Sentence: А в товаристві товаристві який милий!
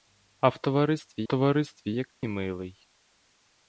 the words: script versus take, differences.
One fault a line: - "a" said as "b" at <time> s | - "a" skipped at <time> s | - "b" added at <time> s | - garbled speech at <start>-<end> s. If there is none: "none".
none